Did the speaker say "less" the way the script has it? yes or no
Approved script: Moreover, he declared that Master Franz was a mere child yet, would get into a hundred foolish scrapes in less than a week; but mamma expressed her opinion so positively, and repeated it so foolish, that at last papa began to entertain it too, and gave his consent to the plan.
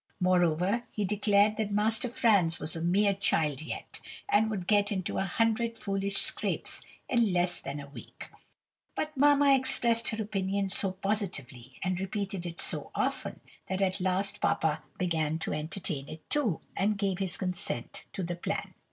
yes